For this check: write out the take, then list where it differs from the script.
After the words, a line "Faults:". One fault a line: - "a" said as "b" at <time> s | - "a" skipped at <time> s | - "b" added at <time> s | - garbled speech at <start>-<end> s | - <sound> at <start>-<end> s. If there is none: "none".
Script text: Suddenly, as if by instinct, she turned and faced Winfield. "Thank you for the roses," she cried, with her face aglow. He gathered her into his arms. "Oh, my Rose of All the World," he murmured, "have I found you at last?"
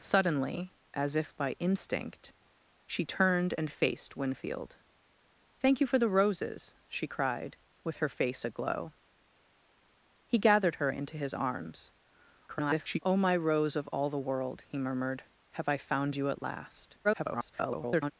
Suddenly, as if by instinct, she turned and faced Winfield. "Thank you for the roses," she cried, with her face aglow. He gathered her into his arms. [garbled] "Oh, my Rose of All the World," he murmured, "have I found you at last?" [garbled]
Faults:
- garbled speech at 12.5-13.0 s
- garbled speech at 17.0-18.1 s